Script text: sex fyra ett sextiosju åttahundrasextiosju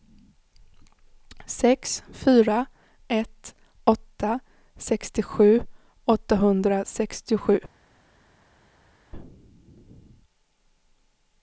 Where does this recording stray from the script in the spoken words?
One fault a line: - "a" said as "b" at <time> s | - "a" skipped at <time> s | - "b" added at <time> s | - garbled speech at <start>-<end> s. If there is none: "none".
- "åtta" added at 3.8 s